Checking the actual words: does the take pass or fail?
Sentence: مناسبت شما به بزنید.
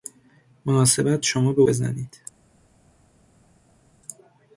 pass